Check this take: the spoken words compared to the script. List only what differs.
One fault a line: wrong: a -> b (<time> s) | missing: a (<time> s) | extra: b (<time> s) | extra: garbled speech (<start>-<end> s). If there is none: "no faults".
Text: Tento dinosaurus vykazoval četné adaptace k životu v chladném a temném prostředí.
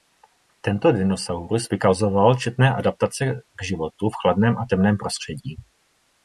no faults